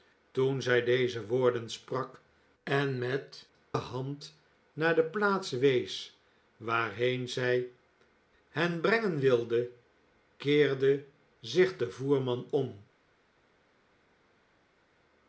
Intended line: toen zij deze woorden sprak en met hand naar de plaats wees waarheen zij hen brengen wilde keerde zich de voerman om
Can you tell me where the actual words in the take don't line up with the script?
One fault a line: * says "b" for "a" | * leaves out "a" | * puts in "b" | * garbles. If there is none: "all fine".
all fine